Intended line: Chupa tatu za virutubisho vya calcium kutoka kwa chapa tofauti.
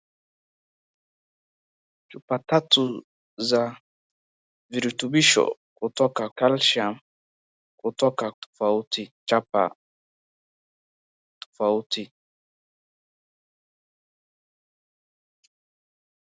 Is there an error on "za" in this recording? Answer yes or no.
no